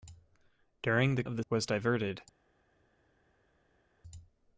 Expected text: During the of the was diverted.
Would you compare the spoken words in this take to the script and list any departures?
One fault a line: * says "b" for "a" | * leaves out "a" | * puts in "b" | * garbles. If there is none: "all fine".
all fine